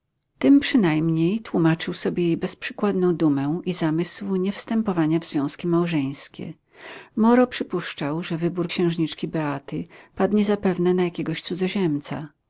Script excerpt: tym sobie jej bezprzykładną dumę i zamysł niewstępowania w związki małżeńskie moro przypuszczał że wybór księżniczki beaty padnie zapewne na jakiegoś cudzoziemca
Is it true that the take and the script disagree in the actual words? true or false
true